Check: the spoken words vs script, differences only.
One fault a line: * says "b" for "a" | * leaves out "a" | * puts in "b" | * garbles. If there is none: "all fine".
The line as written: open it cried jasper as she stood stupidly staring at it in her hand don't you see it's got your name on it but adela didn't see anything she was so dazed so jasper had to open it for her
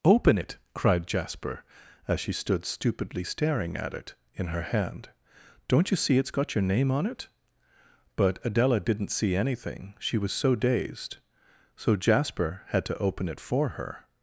all fine